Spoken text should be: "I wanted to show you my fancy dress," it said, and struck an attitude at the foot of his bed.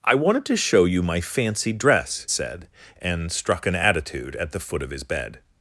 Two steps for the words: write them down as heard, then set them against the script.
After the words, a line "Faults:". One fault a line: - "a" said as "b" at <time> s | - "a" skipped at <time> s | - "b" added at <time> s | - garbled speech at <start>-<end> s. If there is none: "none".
"I wanted to show you my fancy dress," said, and struck an attitude at the foot of his bed.
Faults:
- "it" skipped at 2.3 s